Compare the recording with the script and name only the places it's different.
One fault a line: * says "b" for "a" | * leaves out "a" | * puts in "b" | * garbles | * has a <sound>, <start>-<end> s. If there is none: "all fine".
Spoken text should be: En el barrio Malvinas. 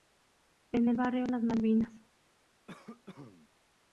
* puts in "Las"
* has a cough, 2.7-3.5 s